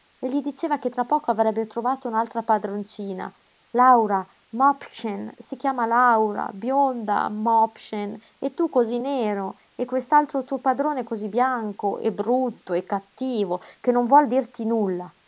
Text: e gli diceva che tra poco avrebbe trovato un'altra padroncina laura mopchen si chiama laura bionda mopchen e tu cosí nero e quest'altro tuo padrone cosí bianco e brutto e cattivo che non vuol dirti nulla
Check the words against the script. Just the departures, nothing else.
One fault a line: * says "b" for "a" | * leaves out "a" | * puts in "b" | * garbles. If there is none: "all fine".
all fine